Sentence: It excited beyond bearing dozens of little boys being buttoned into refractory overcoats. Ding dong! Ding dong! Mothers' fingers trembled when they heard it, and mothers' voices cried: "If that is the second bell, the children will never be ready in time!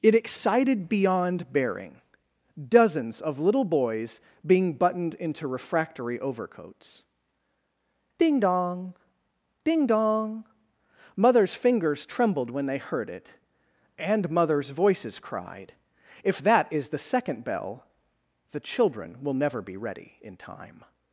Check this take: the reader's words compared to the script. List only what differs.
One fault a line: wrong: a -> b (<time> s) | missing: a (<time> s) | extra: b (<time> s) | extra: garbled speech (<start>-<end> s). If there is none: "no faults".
no faults